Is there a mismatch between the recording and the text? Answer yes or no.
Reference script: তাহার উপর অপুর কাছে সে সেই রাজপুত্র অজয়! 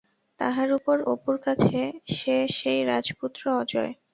no